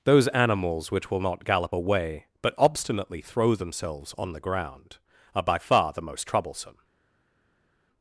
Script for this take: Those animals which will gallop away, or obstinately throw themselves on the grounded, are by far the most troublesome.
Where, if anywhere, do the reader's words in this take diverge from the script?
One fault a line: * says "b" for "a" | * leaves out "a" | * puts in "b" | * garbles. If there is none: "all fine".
* puts in "not"
* says "but" for "or"
* says "ground" for "grounded"